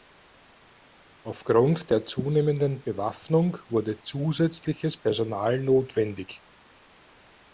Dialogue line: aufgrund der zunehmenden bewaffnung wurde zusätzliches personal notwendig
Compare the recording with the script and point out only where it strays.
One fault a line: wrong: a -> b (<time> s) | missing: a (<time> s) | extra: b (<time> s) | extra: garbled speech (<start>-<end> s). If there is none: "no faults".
no faults